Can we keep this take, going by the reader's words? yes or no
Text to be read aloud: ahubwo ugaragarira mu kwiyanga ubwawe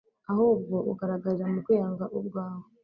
yes